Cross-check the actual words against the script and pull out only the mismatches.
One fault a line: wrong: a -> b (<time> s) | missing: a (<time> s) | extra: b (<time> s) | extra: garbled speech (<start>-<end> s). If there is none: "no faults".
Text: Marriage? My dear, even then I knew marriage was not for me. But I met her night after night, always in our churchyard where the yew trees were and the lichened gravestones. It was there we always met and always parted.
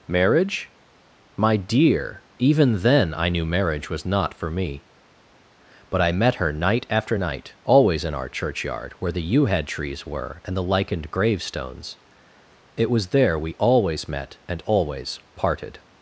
extra: head (9.5 s)